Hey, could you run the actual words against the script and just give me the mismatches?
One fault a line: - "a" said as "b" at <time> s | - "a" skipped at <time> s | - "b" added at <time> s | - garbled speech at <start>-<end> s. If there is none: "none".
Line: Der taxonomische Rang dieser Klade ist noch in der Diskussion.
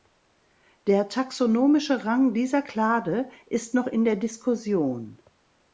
none